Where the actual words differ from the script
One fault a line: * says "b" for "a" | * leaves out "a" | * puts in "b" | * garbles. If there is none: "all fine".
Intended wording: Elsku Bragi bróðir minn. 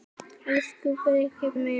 * leaves out "bróðir"